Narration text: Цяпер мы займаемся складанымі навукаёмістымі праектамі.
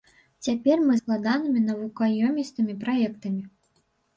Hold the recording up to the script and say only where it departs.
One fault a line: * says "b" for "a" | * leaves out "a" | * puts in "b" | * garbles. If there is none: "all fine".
* leaves out "займаемся"